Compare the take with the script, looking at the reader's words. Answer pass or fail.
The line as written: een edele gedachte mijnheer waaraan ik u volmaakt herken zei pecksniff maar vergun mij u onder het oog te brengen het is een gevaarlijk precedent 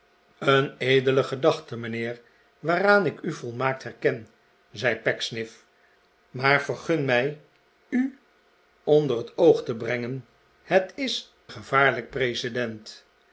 fail